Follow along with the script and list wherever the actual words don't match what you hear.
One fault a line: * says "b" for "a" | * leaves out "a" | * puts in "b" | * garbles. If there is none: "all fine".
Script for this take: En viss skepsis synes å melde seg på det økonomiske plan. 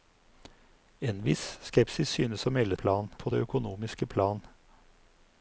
* says "plan" for "seg"